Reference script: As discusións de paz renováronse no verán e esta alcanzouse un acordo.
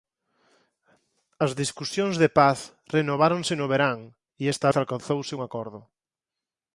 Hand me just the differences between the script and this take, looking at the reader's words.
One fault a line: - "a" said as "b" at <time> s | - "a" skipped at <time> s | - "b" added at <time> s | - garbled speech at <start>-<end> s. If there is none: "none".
none